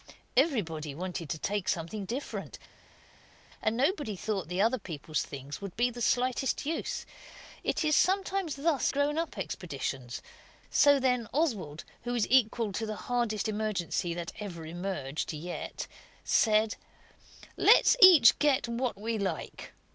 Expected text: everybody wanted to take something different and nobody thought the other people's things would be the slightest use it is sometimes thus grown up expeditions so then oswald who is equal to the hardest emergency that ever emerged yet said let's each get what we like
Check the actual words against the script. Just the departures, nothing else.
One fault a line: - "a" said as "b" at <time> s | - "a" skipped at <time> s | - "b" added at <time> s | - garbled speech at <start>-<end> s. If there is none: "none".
none